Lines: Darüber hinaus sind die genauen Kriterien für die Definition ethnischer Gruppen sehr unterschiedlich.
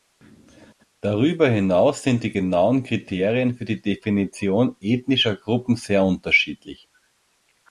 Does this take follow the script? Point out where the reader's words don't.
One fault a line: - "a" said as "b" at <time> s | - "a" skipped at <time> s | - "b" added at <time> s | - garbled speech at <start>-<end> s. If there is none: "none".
none